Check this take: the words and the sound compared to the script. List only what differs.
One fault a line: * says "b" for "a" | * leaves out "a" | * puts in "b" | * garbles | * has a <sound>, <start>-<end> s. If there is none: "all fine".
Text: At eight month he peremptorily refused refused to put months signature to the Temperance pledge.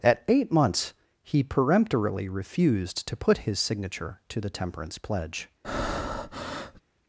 * says "months" for "month"
* leaves out "refused"
* says "his" for "months"
* has a breath, 5.6-6.8 s